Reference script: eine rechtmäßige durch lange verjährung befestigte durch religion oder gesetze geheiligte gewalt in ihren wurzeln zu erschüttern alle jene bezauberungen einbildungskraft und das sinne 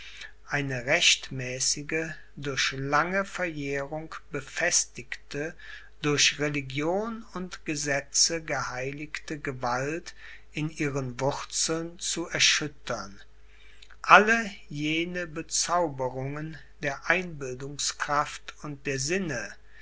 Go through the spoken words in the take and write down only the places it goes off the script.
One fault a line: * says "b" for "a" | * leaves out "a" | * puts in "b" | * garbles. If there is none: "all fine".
* says "und" for "oder"
* puts in "der"
* says "der" for "das"